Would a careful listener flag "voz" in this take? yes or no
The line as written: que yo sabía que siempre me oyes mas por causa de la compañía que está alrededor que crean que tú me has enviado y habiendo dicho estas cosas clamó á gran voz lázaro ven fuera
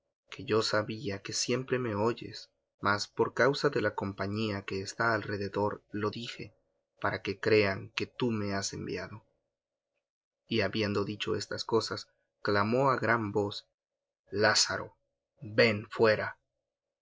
no